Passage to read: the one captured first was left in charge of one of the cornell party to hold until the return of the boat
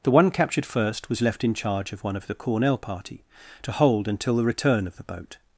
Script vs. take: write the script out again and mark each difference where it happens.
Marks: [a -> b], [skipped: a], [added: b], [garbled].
the one captured first was left in charge of one of the cornell party to hold until the return of the boat